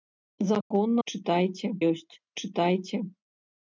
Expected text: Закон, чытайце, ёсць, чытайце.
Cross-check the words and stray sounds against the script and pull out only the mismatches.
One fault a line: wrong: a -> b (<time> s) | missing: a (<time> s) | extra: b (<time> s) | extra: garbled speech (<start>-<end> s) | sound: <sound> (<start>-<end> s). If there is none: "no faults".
sound: dropout (0.6-0.7 s)